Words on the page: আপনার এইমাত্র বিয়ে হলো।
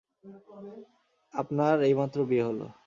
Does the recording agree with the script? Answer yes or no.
yes